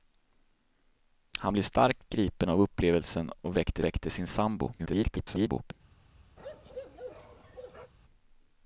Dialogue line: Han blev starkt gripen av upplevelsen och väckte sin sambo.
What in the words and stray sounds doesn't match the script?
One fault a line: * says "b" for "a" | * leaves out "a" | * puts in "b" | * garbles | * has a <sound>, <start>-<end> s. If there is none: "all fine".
* puts in "väckte"
* garbles
* has a bark, 6.4-7.9 s